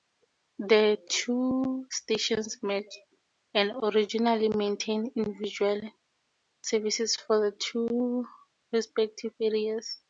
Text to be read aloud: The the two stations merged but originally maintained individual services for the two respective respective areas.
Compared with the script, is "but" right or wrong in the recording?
wrong